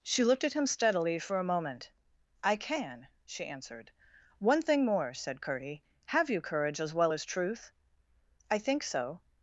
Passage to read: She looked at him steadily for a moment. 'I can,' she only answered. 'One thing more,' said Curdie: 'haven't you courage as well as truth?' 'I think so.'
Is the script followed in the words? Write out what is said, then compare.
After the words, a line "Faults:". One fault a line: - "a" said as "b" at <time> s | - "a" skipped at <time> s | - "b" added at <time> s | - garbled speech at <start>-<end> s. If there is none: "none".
She looked at him steadily for a moment. 'I can,' she answered. 'One thing more,' said Curdie: 'have you courage as well as truth?' 'I think so.'
Faults:
- "only" skipped at 3.5 s
- "haven't" said as "have" at 6.1 s